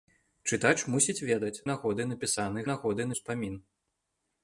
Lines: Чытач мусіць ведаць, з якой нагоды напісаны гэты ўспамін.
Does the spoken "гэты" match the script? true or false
false